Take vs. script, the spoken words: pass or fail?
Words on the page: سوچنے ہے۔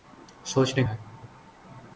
pass